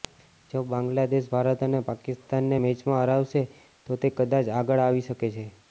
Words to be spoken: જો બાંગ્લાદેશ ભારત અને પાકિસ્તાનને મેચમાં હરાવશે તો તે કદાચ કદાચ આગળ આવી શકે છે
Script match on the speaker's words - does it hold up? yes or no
no